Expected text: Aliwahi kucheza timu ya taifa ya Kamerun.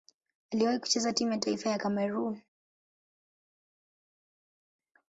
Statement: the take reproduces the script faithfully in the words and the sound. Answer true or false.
true